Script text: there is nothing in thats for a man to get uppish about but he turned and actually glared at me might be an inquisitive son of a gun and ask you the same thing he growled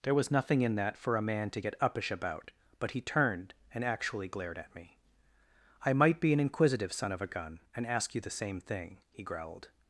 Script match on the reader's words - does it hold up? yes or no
no